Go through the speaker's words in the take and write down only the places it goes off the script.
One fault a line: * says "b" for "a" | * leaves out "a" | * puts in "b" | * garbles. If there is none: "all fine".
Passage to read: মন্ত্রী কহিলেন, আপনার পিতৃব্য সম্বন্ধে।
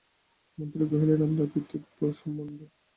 all fine